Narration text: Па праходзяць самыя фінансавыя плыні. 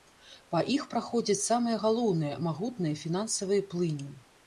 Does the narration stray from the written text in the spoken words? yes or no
yes